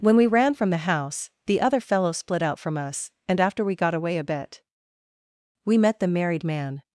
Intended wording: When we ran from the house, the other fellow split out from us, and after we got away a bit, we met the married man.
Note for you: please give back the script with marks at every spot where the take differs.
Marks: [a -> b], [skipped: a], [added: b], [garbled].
When we ran from the house, the other fellow split out from us, and after we got away a bit, we met the married man.